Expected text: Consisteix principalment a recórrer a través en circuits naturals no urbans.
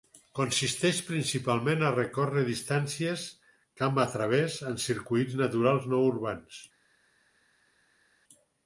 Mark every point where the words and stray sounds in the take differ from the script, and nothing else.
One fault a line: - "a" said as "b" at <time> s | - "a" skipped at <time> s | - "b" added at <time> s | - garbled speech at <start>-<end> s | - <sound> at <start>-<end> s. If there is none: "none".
- "distàncies camp" added at 2.5 s